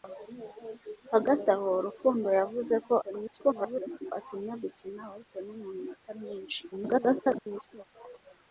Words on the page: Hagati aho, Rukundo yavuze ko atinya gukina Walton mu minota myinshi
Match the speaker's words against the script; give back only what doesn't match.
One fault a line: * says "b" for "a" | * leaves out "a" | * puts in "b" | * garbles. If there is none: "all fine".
* garbles
* garbles